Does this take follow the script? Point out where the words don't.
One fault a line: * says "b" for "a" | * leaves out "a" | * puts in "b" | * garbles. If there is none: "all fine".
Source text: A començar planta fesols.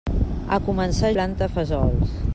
all fine